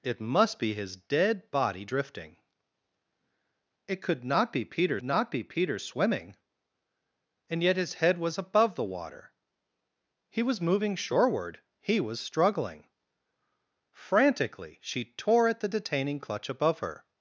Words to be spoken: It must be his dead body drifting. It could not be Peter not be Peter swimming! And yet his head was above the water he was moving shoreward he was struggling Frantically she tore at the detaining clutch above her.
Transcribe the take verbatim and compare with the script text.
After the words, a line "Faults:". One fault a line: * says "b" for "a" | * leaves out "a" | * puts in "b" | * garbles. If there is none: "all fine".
It must be his dead body drifting. It could not be Peter not be Peter swimming! And yet his head was above the water he was moving shoreward he was struggling Frantically she tore at the detaining clutch above her.
Faults:
all fine